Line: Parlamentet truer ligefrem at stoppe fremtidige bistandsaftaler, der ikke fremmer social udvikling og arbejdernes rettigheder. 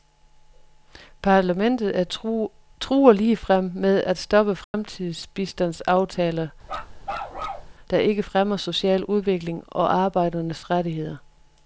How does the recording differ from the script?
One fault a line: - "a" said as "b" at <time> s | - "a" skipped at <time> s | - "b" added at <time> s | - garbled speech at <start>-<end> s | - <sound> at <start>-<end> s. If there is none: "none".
- "med" added at 3.8 s
- dropout at 4.6-4.7 s
- bark at 6.6-7.7 s